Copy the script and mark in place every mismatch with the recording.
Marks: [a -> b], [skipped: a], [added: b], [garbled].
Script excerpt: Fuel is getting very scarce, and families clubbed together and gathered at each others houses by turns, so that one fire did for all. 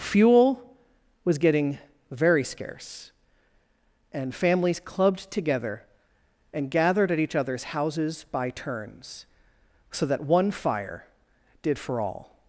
Fuel [is -> was] getting very scarce, and families clubbed together and gathered at each others houses by turns, so that one fire did for all.